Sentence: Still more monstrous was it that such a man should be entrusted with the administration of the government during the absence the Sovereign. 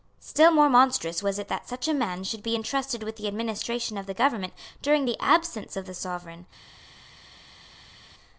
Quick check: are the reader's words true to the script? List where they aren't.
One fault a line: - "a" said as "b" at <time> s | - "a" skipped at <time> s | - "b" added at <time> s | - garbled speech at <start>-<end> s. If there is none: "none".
- "of" added at 5.8 s